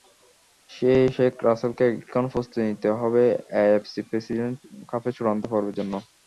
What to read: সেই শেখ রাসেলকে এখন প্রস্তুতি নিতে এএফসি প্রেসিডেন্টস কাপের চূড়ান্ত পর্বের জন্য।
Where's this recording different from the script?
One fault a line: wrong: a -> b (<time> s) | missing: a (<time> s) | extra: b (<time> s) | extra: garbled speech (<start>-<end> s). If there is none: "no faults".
extra: হবে (3.0 s)